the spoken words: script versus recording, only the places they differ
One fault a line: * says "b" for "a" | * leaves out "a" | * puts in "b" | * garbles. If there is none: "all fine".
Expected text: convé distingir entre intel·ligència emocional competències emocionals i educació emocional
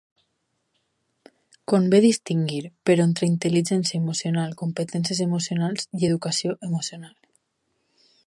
* puts in "però"